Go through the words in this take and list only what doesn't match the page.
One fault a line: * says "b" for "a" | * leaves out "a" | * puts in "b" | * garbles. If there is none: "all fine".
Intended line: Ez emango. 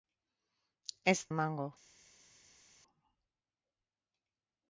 all fine